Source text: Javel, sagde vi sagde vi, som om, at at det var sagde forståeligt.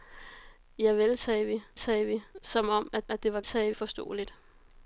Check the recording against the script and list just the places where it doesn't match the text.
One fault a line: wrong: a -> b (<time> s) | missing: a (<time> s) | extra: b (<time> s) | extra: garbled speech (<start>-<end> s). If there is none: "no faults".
no faults